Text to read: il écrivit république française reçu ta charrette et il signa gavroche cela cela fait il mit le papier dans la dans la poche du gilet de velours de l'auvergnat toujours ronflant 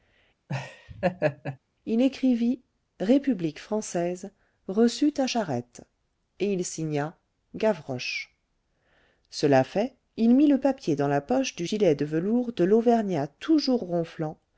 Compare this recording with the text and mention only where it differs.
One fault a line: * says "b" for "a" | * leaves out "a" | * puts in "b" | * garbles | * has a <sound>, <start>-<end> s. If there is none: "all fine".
* has a laugh, 0.5-1.6 s
* leaves out "cela"
* leaves out "dans la"